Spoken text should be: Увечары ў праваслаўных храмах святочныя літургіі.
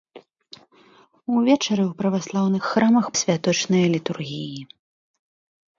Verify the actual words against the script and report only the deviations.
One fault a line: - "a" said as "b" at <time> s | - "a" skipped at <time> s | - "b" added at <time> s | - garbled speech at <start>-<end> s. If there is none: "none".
none